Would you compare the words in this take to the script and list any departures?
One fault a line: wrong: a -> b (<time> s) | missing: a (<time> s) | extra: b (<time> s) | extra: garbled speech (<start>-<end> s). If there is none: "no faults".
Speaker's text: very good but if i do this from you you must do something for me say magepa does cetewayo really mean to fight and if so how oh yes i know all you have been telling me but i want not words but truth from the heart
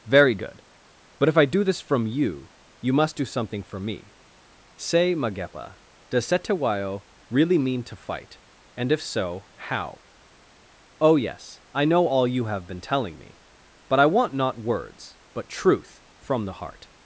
no faults